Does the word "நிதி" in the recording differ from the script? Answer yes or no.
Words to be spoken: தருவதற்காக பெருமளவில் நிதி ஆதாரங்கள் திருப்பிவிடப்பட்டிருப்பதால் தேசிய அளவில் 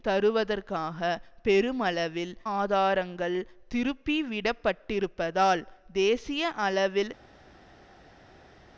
yes